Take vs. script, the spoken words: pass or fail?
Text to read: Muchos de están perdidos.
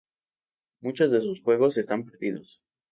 fail